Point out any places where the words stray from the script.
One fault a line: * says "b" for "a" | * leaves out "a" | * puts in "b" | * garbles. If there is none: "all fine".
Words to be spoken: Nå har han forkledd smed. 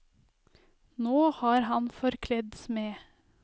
all fine